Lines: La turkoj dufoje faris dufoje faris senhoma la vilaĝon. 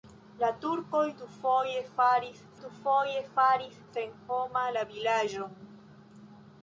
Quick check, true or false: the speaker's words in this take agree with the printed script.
true